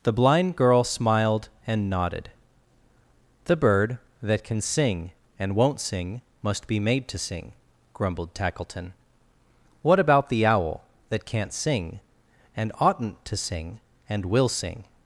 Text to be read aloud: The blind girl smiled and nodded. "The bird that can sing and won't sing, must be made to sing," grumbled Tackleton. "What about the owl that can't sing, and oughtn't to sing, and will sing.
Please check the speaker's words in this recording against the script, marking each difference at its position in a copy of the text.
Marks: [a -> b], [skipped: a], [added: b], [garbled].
The blind girl smiled and nodded. "The bird that can sing and won't sing, must be made to sing," grumbled Tackleton. "What about the owl that can't sing, and oughtn't to sing, and will sing.